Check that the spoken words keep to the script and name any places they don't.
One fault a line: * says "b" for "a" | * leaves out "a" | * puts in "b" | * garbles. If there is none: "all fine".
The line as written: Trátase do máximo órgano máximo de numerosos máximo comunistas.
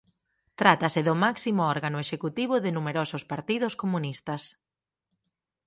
* says "executivo" for "máximo"
* says "partidos" for "máximo"